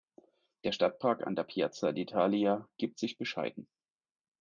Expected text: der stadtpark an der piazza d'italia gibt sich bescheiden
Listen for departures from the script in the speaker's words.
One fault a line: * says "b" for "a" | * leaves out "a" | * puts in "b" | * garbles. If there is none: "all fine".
all fine